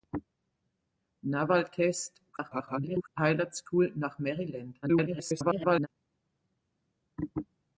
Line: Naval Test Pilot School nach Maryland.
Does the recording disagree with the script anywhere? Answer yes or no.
yes